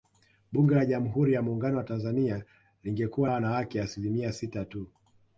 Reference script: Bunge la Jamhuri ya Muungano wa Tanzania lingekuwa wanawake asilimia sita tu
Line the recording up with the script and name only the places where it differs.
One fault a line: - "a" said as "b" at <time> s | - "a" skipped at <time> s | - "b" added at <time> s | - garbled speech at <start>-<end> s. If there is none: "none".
none